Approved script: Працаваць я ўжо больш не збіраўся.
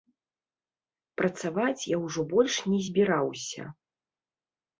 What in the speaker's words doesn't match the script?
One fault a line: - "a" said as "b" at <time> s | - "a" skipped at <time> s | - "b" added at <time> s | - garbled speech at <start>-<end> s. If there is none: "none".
none